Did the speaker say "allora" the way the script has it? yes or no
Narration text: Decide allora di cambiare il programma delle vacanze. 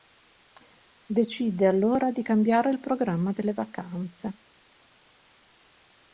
yes